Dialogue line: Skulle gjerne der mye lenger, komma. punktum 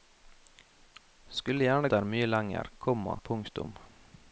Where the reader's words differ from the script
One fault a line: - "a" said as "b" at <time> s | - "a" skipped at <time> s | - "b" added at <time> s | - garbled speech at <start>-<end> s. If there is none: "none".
none